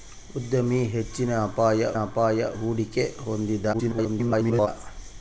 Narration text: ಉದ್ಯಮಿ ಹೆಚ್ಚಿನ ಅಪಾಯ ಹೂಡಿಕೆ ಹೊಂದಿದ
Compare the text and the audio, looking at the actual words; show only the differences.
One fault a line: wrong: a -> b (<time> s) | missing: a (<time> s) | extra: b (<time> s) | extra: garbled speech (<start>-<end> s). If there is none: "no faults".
extra: ಅಪಾಯ (2.0 s)
extra: garbled speech (3.7-4.7 s)